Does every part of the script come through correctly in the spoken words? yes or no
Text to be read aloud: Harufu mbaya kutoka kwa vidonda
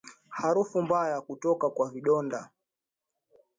yes